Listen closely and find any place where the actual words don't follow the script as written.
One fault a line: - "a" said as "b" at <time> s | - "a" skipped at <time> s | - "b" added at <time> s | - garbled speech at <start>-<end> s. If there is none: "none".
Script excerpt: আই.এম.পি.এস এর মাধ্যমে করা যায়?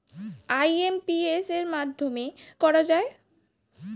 none